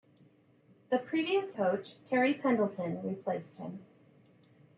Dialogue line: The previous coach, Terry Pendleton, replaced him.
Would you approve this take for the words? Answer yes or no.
yes